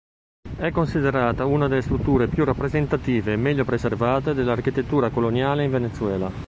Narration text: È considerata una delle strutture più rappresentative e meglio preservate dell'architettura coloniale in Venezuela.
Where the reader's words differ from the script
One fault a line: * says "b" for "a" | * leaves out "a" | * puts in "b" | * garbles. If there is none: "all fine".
all fine